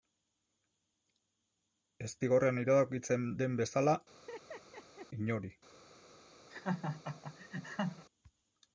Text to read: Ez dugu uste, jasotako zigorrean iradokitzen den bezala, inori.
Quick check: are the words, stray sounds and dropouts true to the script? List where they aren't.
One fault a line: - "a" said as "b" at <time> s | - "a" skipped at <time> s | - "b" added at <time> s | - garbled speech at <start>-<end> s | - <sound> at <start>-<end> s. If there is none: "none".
- "dugu uste jasotako" skipped at 2.1 s
- laugh at 4.1-5.1 s
- laugh at 6.5-8.1 s